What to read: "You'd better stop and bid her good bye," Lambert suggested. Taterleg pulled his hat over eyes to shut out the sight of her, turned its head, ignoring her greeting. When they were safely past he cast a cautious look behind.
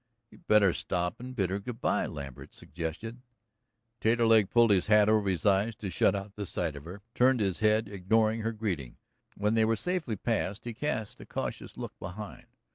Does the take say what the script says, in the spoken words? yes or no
no